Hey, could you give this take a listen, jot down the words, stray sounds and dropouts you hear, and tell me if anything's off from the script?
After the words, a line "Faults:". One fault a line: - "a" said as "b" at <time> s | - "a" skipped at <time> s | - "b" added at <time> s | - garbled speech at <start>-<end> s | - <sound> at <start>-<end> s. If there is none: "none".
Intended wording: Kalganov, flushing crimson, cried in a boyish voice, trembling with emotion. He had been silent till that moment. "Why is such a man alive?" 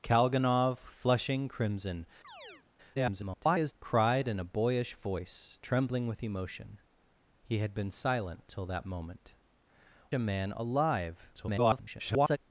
Kalganov, flushing crimson, [garbled] cried in a boyish voice, trembling with emotion. He had been silent till that moment. "A man alive?" [garbled]
Faults:
- chirp at 2.2-2.7 s
- garbled speech at 2.9-3.7 s
- "Why is such" skipped at 9.3 s
- garbled speech at 11.3-12.4 s